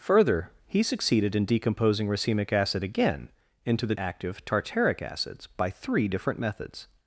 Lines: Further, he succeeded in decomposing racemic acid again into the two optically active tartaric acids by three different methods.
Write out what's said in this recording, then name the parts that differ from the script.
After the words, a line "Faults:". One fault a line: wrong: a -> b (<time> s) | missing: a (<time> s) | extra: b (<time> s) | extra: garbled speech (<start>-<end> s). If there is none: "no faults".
Further, he succeeded in decomposing racemic acid again into the active tartaric acids by three different methods.
Faults:
missing: two optically (3.9 s)